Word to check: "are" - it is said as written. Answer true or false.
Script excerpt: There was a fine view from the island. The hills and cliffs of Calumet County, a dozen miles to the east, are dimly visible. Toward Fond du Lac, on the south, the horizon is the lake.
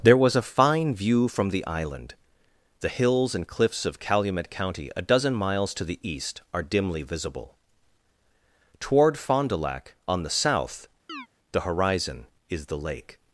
true